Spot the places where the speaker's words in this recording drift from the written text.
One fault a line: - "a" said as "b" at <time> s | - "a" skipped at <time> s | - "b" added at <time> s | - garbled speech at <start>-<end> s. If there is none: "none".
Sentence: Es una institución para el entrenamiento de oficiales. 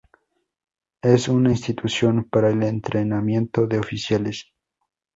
none